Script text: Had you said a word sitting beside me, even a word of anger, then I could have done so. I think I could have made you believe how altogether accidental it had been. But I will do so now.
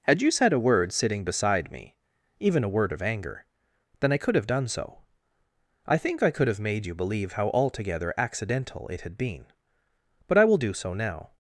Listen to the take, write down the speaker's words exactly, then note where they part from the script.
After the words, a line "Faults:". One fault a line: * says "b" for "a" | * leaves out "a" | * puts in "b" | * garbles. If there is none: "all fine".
Had you said a word sitting beside me, even a word of anger, then I could have done so. I think I could have made you believe how altogether accidental it had been. But I will do so now.
Faults:
all fine